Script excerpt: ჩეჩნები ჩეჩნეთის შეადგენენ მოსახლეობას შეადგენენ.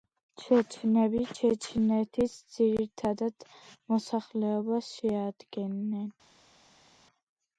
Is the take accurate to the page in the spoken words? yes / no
no